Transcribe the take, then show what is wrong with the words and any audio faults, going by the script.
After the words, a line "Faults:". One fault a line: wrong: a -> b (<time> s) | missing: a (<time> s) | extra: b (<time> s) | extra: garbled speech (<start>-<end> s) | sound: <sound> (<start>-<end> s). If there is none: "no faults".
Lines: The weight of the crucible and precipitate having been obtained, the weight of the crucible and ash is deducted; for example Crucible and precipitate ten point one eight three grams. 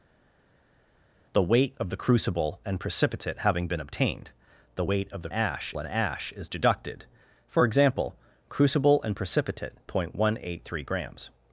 The weight of the crucible and precipitate having been obtained, the weight of the ash and ash is deducted; for example Crucible and precipitate point one eight three grams.
Faults:
wrong: crucible -> ash (5.3 s)
missing: ten (9.7 s)